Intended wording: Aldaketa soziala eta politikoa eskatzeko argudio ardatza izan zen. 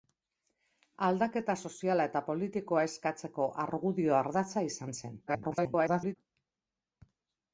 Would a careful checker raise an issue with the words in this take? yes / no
yes